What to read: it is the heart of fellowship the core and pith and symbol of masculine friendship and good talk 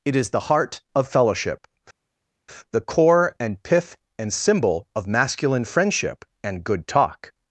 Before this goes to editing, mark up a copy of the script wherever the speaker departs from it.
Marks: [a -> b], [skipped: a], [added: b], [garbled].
it is the heart of fellowship the core and pith and symbol of masculine friendship and good talk